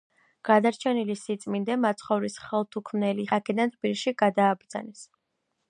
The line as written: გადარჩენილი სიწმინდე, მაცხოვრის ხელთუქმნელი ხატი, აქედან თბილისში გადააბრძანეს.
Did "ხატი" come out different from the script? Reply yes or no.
yes